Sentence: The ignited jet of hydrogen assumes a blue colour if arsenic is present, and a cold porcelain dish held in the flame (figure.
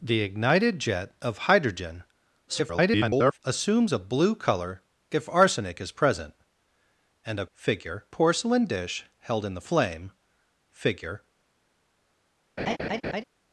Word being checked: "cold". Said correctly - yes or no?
no